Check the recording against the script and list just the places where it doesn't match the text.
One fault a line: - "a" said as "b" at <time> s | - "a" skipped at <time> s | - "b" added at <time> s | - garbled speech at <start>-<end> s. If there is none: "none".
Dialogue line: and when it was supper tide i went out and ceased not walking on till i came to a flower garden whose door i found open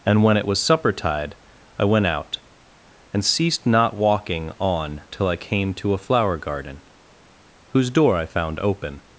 none